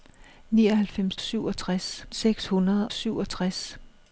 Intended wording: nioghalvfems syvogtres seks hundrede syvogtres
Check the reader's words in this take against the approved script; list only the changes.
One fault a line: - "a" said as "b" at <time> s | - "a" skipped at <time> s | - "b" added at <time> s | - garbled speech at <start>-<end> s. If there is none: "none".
none